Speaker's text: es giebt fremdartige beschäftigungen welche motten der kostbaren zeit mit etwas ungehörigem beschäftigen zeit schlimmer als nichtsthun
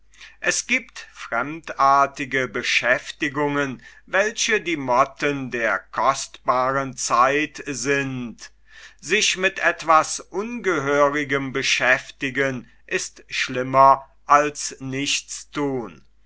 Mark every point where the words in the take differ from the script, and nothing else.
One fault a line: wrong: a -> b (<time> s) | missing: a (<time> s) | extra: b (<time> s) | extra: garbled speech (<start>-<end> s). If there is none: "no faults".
extra: die (4.6 s)
extra: sind sich (7.7 s)
wrong: zeit -> ist (12.9 s)